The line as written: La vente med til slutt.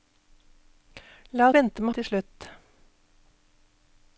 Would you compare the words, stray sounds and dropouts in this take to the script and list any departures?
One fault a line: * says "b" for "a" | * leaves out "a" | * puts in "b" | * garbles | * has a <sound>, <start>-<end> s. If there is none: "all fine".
all fine